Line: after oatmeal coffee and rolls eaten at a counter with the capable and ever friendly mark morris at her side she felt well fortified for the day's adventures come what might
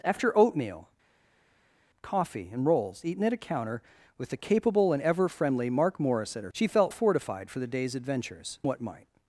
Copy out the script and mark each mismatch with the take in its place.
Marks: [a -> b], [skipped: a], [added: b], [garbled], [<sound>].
after oatmeal coffee and rolls eaten at a counter with the capable and ever friendly mark morris at her [skipped: side] she felt [skipped: well] fortified for the day's adventures [skipped: come] what might